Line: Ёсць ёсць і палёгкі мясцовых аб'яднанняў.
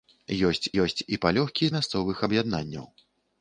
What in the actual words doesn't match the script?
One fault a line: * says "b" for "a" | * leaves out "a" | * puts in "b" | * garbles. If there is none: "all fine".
all fine